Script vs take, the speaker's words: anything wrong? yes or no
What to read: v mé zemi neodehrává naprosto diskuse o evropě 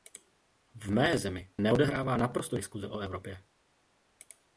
no